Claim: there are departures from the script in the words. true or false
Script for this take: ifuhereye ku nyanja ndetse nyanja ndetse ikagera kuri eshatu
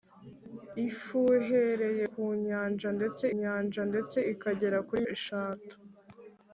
false